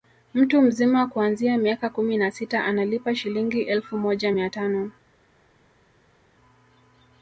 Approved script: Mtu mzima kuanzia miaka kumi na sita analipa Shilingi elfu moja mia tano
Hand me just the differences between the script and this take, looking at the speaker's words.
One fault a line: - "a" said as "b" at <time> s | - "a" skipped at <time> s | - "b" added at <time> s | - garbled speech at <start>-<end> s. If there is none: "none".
none